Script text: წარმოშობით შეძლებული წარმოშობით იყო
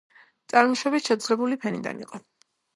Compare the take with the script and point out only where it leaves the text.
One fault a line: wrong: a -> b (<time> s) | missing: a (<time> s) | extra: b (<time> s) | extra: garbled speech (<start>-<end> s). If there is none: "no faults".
wrong: წარმოშობით -> ფენიდან (1.7 s)